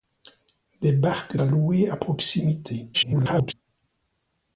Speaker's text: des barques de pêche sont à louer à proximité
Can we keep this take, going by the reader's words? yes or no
no